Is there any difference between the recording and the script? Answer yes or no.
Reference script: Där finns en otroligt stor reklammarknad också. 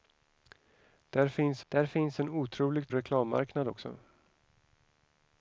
yes